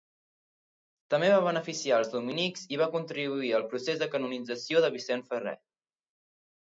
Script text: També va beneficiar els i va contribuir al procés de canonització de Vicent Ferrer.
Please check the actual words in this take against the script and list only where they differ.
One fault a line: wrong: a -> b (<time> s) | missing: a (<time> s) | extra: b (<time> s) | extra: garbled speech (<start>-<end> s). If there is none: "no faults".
extra: dominics (2.1 s)